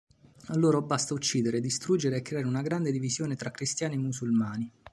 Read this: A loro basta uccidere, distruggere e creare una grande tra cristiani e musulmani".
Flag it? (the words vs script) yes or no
yes